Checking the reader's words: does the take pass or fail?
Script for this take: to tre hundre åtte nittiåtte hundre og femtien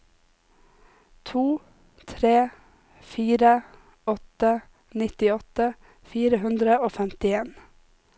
fail